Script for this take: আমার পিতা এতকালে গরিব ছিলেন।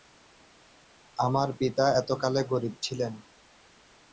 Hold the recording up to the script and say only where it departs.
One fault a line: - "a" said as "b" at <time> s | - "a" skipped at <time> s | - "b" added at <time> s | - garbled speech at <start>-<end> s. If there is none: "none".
none